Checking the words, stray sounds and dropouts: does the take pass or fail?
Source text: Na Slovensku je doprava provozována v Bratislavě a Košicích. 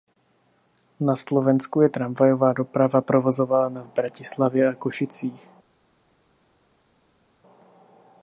fail